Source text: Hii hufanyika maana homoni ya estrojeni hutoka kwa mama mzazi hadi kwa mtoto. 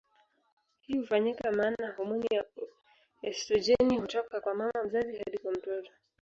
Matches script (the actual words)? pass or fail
pass